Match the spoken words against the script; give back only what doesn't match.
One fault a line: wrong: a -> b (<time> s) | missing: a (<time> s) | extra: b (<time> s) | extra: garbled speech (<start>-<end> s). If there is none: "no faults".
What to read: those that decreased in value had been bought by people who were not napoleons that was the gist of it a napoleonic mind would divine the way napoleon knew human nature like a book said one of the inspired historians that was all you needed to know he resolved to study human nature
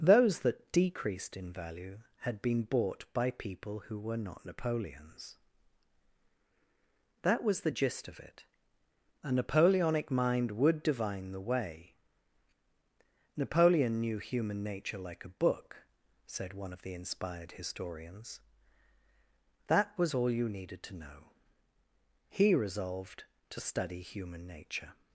no faults